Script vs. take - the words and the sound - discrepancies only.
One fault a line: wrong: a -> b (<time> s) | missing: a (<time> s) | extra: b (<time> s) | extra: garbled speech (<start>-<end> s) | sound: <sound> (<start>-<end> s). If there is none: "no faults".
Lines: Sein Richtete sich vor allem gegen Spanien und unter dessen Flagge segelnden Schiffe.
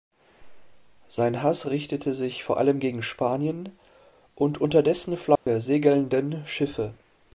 extra: Hass (1.4 s)
sound: dropout (5.4-5.5 s)